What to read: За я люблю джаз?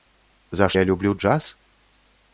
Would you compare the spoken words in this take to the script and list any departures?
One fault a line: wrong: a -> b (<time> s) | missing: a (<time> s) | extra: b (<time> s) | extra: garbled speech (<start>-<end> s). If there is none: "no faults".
no faults